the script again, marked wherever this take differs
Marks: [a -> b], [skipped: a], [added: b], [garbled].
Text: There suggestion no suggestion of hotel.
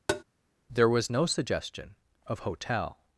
There [suggestion -> was] no suggestion of hotel.